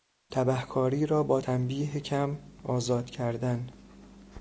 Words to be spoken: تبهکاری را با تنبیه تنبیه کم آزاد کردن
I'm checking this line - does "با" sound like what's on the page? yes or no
yes